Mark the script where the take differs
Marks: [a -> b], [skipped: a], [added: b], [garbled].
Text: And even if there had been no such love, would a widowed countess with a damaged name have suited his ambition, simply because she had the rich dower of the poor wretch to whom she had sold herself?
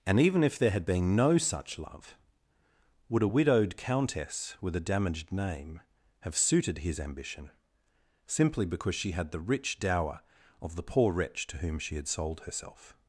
And even if there had been no such love, would a widowed countess with a damaged name have suited his ambition, simply because she had the rich dower of the poor wretch to whom she had sold herself?